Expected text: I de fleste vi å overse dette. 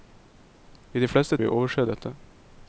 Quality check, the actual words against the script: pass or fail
pass